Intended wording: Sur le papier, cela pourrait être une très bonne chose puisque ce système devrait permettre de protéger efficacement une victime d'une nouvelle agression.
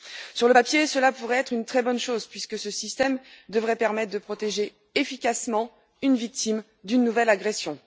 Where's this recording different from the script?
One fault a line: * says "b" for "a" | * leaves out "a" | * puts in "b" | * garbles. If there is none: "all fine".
all fine